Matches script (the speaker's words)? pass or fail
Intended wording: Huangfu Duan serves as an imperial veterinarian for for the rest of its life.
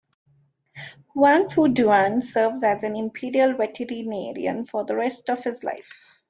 fail